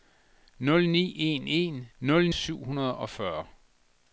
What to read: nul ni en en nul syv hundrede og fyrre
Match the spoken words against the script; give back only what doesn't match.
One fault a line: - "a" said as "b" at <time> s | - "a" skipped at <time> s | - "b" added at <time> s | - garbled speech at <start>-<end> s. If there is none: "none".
none